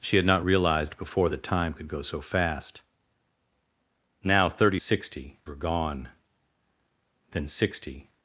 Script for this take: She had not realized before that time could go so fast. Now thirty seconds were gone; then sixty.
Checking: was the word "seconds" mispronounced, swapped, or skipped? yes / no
yes